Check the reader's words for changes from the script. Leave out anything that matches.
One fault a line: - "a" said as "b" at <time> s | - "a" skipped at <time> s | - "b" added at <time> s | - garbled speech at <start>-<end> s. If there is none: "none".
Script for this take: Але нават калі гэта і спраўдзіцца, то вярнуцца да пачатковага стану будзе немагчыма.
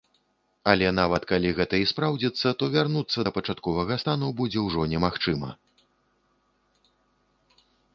- "ўжо" added at 4.7 s